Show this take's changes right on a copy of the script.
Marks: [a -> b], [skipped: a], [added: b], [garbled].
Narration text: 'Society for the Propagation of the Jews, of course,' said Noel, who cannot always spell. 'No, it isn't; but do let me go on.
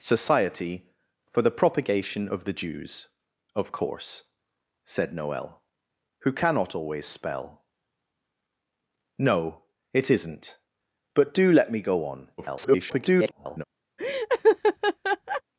'Society for the Propagation of the Jews, of course,' said Noel, who cannot always spell. 'No, it isn't; but do let me go on. [garbled]